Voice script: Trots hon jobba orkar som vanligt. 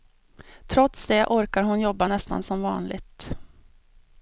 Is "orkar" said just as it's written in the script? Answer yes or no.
no